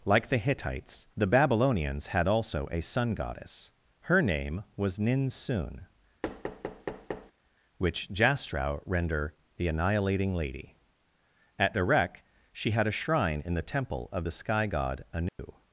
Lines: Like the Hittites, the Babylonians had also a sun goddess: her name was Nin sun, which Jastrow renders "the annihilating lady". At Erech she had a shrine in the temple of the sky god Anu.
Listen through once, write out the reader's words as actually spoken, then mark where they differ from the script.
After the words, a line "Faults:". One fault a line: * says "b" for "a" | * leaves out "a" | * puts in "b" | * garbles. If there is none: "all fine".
Like the Hittites, the Babylonians had also a sun goddess: her name was Nin sun, which Jastrow render "the annihilating lady". At Erech she had a shrine in the temple of the sky god Anu.
Faults:
* says "render" for "renders"